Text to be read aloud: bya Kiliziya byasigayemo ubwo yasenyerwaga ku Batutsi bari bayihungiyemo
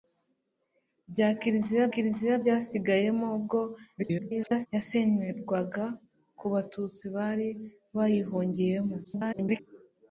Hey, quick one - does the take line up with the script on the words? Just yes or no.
no